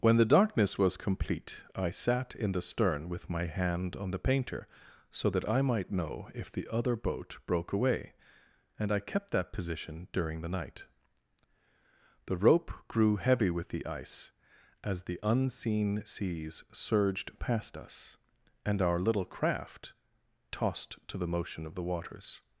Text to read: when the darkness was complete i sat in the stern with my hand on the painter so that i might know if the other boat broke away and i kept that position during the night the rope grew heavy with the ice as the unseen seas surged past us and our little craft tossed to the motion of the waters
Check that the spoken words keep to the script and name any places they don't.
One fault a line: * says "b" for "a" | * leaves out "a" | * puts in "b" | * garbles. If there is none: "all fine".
all fine